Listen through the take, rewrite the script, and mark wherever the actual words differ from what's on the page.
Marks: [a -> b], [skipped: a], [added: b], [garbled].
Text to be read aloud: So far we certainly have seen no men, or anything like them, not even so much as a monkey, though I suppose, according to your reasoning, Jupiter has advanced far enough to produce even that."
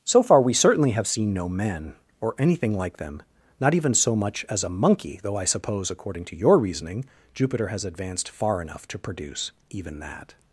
So far we certainly have seen no men, or anything like them, not even so much as a monkey, though I suppose, according to your reasoning, Jupiter has advanced far enough to produce even that."